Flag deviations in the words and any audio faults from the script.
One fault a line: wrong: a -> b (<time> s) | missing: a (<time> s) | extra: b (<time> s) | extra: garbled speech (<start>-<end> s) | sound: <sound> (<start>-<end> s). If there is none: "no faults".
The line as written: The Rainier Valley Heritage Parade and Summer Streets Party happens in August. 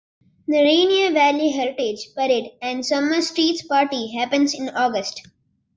no faults